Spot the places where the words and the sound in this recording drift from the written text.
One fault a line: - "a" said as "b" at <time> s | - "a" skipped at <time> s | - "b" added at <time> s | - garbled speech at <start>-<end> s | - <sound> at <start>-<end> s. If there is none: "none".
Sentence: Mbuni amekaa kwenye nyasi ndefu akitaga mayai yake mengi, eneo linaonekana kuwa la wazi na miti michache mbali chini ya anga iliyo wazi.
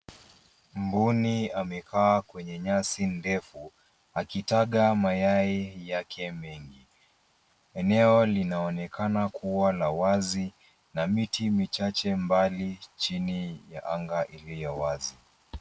none